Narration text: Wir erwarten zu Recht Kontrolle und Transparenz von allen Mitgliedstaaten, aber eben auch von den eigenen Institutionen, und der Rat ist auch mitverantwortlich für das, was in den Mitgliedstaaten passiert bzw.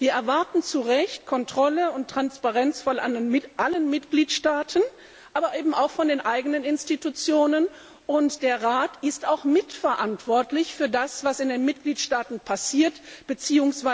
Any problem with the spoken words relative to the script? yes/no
no